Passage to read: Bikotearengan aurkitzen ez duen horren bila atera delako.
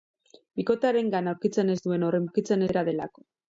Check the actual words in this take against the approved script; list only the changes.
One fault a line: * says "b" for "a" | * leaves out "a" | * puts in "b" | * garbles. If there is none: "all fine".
* says "aurkitzen" for "bila"